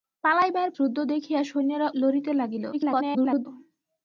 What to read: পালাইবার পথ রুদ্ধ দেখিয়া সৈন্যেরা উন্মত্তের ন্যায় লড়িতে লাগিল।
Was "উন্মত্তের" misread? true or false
true